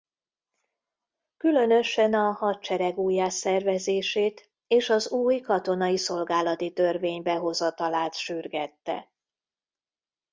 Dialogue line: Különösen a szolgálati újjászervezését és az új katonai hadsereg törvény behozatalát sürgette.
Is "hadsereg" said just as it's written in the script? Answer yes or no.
no